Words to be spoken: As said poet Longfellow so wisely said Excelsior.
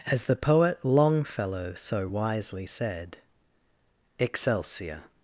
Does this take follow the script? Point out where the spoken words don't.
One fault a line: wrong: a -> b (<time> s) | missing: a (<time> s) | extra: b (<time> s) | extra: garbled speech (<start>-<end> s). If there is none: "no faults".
wrong: said -> the (0.2 s)